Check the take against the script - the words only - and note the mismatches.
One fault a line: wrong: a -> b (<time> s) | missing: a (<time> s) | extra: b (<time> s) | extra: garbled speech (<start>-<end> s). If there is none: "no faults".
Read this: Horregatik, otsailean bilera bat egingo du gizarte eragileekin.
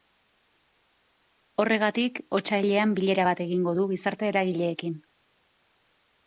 no faults